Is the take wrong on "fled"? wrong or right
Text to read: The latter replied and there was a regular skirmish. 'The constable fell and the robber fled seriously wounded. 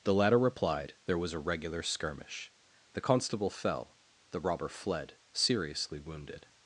right